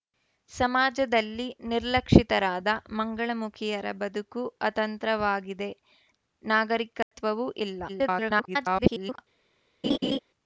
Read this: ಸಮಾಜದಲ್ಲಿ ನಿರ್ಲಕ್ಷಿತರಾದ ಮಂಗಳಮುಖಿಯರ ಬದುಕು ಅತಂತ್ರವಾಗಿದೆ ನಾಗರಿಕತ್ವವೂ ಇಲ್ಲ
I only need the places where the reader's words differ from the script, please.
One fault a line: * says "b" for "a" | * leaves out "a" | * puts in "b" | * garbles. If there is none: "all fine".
* garbles